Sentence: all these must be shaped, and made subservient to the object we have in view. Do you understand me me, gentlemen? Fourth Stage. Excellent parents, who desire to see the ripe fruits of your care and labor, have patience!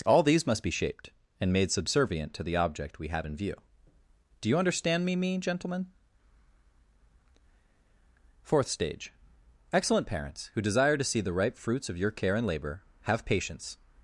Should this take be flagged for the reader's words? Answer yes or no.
no